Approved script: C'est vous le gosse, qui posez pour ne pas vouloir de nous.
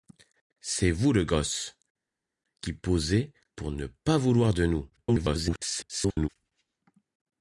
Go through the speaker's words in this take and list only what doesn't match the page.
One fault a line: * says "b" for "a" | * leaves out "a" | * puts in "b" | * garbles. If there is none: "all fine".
* garbles